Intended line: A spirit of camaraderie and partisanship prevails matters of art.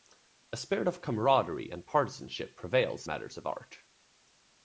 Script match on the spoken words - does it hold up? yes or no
yes